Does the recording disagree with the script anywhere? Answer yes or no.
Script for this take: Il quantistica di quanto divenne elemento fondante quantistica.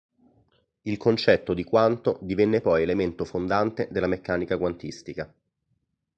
yes